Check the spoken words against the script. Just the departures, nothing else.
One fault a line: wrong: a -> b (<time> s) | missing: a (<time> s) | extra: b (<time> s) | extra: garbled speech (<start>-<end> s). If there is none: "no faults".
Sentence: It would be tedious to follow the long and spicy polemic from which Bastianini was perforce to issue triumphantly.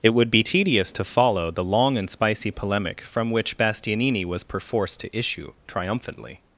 no faults